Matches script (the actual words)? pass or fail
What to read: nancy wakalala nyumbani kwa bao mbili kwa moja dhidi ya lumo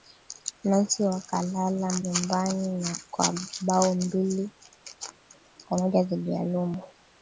pass